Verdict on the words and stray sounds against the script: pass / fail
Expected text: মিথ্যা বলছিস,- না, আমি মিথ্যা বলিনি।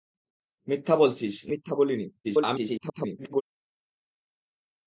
fail